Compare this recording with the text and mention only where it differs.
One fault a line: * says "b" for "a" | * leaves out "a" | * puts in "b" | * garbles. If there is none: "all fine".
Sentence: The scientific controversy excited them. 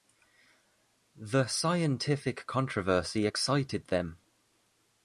all fine